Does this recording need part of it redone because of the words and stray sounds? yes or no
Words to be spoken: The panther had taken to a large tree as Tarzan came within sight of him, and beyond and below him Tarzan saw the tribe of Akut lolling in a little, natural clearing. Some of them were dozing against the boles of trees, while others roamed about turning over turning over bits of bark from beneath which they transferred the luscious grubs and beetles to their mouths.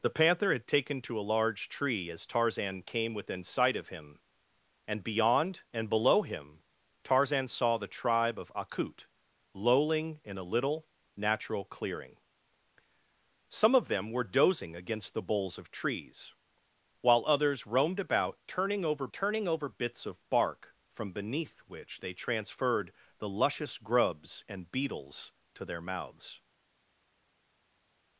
no